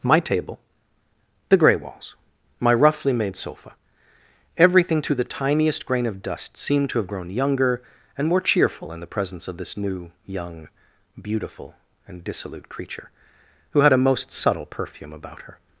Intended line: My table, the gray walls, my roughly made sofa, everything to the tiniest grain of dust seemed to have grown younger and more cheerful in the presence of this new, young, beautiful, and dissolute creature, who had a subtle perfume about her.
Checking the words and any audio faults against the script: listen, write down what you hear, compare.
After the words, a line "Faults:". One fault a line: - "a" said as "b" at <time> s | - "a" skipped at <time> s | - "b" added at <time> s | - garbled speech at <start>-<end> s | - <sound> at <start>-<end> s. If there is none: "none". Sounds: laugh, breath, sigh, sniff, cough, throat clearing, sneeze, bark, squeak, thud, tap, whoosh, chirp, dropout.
My table, the gray walls, my roughly made sofa, everything to the tiniest grain of dust seemed to have grown younger and more cheerful in the presence of this new, young, beautiful, and dissolute creature, who had a most subtle perfume about her.
Faults:
- "most" added at 14.0 s